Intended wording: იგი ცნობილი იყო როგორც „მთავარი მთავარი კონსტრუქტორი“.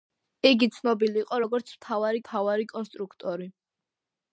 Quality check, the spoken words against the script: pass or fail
pass